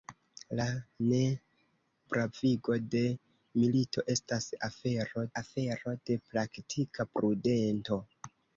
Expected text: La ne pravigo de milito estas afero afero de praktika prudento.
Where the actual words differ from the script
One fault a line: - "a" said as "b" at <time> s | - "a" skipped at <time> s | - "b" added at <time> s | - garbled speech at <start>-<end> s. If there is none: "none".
none